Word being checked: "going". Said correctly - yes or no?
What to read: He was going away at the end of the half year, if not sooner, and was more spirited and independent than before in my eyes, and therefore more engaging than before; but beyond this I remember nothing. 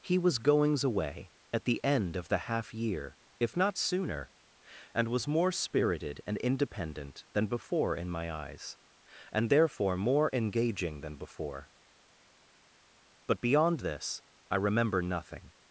no